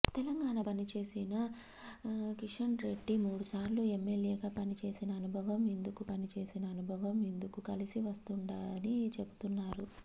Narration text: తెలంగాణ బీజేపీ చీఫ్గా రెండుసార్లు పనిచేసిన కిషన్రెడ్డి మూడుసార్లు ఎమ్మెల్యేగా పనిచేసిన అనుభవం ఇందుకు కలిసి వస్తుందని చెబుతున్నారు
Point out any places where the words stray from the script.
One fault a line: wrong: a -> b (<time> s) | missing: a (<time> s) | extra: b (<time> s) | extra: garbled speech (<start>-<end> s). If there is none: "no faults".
missing: బీజేపీ చీఫ్గా రెండుసార్లు (0.6 s)
extra: పనిచేసిన అనుభవం ఇందుకు (6.1 s)